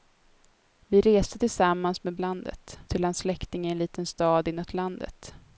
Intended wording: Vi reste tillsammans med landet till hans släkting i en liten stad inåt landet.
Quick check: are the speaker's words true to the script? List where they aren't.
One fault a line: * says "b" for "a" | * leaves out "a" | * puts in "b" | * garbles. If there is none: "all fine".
all fine